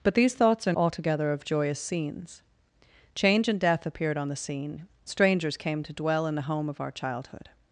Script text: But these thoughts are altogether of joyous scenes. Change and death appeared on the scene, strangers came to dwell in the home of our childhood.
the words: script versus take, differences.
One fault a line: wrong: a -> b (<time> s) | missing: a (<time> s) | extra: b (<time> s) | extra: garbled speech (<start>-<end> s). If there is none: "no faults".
no faults